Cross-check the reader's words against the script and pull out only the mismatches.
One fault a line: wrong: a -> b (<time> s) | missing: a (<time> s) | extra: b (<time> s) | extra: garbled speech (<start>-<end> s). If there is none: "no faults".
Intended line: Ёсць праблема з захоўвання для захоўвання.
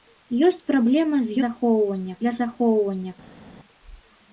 no faults